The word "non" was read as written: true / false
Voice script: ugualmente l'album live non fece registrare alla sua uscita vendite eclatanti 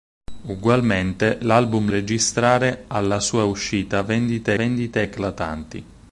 false